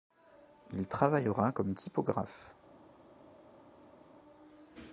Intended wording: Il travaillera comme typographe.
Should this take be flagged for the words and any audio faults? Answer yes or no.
no